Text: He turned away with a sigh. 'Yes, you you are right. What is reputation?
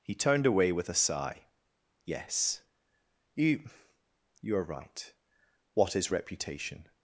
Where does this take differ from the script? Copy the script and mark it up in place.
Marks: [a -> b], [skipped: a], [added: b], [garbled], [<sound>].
He turned away with a sigh. 'Yes, you you are right. What is reputation?